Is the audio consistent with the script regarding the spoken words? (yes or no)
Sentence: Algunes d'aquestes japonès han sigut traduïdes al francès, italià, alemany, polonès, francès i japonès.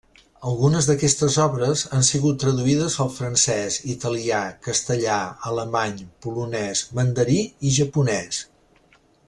no